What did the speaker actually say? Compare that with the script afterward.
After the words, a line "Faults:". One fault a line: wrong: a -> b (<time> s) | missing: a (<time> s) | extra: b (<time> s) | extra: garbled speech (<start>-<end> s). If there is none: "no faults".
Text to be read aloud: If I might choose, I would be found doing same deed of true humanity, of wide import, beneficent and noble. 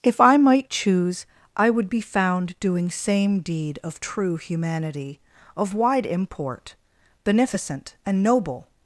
If I might choose, I would be found doing same deed of true humanity, of wide import, beneficent and noble.
Faults:
no faults